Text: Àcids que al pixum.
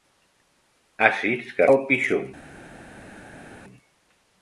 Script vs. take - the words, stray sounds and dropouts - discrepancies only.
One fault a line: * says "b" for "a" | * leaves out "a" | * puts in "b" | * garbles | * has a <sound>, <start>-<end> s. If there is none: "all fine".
all fine